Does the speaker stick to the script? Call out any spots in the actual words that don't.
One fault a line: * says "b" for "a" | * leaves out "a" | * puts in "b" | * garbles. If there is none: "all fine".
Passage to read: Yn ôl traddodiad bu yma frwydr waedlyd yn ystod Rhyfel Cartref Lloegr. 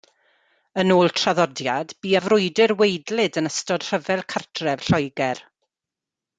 * leaves out "yma"